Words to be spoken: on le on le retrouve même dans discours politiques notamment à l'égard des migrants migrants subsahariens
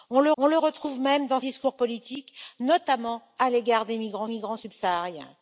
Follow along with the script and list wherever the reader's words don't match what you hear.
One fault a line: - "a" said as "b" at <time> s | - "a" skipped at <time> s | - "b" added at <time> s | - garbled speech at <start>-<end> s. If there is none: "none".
none